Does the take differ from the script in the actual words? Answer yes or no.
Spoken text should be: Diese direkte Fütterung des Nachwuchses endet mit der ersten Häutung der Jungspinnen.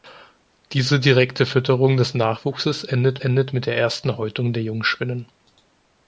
yes